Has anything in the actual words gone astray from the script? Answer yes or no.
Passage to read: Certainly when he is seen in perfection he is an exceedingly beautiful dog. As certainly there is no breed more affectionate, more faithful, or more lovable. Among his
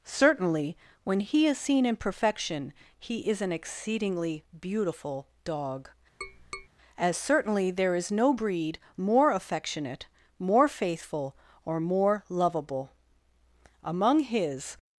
no